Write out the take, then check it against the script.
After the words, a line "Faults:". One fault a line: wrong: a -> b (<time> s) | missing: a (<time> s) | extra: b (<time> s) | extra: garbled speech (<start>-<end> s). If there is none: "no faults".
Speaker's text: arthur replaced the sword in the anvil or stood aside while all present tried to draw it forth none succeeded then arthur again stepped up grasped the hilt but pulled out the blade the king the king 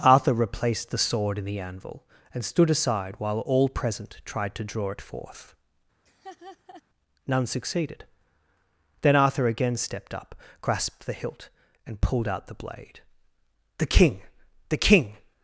arthur replaced the sword in the anvil and stood aside while all present tried to draw it forth none succeeded then arthur again stepped up grasped the hilt and pulled out the blade the king the king
Faults:
wrong: or -> and (2.3 s)
wrong: but -> and (11.9 s)